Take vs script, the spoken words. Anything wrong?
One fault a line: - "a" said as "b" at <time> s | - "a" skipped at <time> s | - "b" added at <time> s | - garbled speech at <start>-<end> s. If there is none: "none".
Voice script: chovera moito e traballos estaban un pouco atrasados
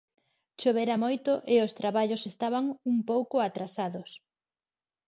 - "os" added at 1.7 s